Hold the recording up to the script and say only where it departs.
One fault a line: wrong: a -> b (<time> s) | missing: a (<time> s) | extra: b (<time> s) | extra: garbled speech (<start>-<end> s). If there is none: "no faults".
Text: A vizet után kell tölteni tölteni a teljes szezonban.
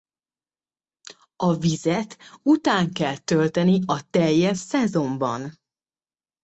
missing: tölteni (3.8 s)